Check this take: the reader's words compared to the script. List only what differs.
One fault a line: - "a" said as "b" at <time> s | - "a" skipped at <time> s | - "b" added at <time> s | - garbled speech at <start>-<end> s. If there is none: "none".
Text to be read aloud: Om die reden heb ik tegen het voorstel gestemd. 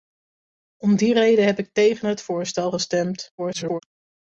- garbled speech at 3.4-3.8 s